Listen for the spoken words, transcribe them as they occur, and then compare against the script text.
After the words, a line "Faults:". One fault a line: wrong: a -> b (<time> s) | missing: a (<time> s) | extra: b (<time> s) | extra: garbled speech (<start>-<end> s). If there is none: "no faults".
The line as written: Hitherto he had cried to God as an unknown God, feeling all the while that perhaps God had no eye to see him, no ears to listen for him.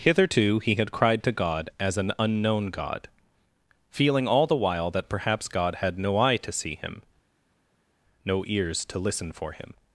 Hitherto he had cried to God as an unknown God, feeling all the while that perhaps God had no eye to see him, no ears to listen for him.
Faults:
no faults